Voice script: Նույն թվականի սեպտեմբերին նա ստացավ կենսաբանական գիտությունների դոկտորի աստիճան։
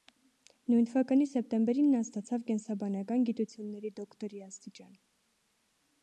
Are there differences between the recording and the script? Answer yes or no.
no